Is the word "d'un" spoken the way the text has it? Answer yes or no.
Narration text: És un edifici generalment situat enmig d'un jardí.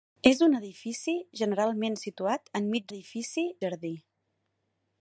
no